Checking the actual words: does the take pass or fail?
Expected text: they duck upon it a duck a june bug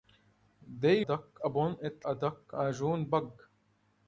pass